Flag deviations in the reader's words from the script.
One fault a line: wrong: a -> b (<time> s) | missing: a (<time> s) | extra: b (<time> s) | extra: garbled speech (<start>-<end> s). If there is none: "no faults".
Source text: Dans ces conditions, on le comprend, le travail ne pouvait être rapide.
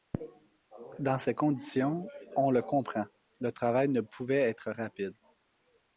no faults